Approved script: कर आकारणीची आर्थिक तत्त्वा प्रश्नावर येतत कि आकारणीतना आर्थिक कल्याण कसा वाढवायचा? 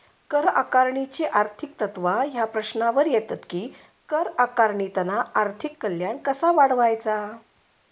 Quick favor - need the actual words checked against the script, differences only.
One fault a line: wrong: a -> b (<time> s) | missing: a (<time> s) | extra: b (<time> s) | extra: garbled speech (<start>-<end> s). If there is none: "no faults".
extra: ह्या (2.2 s)
extra: कर (4.1 s)